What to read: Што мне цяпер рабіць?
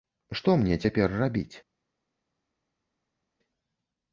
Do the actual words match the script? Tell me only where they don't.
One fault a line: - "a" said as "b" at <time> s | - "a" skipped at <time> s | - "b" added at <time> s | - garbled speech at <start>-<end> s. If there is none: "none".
none